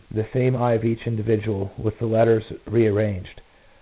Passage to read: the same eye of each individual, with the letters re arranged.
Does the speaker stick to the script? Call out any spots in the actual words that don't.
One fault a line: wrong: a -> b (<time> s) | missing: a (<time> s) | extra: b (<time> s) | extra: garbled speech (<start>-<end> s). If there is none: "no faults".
no faults